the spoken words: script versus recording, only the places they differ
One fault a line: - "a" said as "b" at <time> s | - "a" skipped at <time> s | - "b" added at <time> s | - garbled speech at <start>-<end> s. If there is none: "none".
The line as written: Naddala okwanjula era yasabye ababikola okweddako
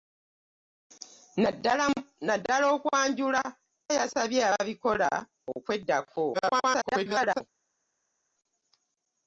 - "era" skipped at 3.4 s
- garbled speech at 6.3-7.4 s